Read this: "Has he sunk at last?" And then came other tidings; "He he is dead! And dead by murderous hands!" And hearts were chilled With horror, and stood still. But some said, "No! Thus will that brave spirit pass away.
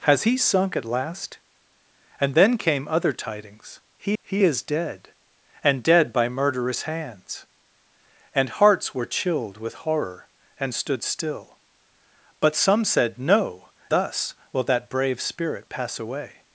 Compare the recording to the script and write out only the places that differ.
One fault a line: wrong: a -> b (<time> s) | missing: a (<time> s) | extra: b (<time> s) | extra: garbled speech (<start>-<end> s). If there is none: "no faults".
no faults